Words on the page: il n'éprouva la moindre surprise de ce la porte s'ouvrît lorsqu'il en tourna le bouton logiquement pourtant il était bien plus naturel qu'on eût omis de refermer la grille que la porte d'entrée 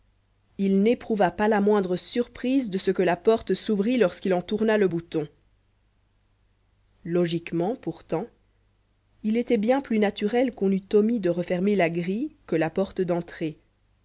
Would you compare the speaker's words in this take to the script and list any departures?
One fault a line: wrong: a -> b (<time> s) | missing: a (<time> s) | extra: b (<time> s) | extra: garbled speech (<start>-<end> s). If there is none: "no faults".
extra: pas (1.3 s)
extra: que (2.9 s)